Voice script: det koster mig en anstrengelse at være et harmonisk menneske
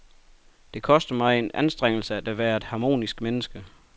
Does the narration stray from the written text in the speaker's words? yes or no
no